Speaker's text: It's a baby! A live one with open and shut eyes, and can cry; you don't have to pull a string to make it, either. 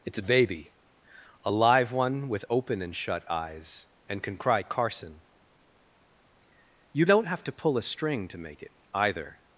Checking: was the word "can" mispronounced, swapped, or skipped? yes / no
no